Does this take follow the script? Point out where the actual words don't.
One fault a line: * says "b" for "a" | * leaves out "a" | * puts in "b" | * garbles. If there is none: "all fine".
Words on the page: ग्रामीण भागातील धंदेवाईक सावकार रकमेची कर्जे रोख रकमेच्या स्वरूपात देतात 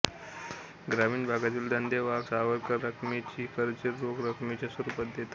all fine